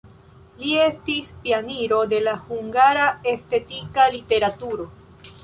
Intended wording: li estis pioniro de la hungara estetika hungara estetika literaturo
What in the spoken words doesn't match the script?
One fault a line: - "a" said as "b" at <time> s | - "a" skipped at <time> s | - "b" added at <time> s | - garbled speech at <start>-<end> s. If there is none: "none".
- "hungara estetika" skipped at 4.1 s